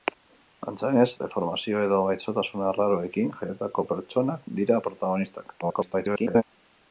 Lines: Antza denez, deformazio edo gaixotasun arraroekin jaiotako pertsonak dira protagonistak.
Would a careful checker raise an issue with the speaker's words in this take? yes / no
yes